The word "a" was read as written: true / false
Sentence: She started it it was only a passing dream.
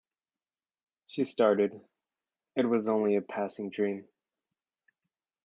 true